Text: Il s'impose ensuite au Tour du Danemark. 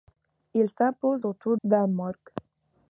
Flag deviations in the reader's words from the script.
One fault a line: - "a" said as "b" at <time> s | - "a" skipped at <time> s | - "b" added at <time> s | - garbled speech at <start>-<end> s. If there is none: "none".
- "ensuite" skipped at 1.2 s
- "du" skipped at 1.6 s